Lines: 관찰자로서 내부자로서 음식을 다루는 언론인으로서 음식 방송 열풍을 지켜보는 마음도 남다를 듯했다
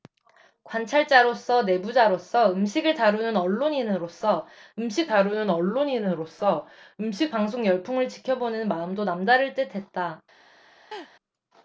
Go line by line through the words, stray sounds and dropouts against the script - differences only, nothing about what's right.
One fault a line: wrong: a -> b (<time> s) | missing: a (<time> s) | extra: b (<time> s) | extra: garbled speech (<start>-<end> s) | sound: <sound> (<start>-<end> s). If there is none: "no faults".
extra: 다루는 언론인으로서 음식 (5.1 s)
sound: laugh (10.9-11.1 s)